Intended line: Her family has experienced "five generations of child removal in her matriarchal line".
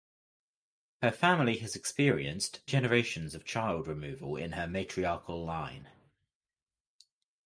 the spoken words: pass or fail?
fail